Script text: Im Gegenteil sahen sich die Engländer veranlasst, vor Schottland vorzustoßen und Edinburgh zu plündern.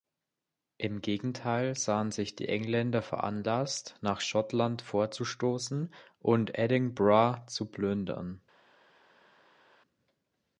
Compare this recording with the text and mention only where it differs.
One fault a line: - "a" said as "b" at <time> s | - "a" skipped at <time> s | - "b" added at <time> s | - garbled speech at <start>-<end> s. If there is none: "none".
- "vor" said as "nach" at 4.0 s